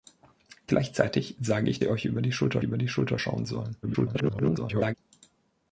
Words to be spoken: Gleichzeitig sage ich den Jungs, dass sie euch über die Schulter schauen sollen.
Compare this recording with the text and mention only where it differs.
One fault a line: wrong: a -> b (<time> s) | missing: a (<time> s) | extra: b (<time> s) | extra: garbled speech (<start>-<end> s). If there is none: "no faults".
wrong: den Jungs dass sie euch -> sie euch über die Schulter (1.8 s)
extra: garbled speech (3.8-4.9 s)